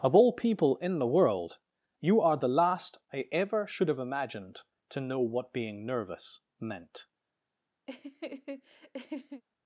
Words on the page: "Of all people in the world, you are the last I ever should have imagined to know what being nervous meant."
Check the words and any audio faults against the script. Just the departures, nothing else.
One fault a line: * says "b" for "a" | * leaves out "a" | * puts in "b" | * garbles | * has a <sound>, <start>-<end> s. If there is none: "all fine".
* has a laugh, 7.9-9.4 s